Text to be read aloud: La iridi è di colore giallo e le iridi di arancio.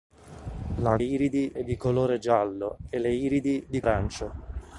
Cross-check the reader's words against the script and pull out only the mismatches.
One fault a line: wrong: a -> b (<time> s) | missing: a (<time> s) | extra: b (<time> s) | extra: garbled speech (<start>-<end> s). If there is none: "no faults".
no faults